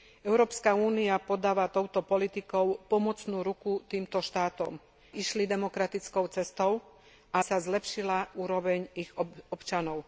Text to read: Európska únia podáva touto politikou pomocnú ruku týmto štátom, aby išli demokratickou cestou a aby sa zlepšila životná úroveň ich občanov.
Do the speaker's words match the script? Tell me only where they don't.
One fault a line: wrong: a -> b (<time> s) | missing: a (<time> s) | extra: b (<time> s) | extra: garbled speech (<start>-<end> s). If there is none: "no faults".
missing: aby (4.8 s)
missing: aby (7.4 s)
missing: životná (8.4 s)